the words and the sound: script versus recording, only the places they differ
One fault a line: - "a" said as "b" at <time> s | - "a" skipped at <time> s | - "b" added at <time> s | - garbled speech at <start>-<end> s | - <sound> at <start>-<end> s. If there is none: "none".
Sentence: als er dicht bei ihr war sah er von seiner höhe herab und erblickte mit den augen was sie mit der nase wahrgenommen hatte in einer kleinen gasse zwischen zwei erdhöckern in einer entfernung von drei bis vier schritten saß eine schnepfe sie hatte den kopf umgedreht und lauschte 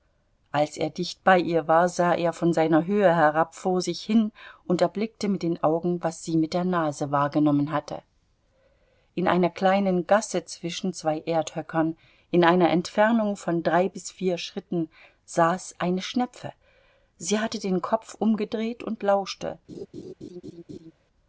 - "vor sich hin" added at 3.5 s
- laugh at 19.7-20.9 s